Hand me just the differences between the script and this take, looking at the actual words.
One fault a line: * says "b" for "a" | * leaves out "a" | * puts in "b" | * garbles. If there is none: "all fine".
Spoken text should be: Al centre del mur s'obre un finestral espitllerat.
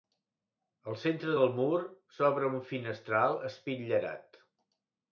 all fine